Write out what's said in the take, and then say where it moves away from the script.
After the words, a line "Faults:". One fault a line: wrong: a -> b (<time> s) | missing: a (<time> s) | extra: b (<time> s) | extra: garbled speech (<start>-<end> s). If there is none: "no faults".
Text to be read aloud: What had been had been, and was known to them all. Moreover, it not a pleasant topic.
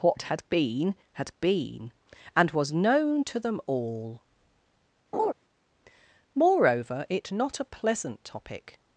What had been had been, and was known to them all. Moreover, it not a pleasant topic.
Faults:
no faults